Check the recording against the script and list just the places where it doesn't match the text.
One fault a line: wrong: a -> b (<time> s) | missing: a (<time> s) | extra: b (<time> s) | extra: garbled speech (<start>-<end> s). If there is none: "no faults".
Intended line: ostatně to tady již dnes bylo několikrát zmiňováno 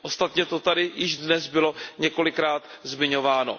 no faults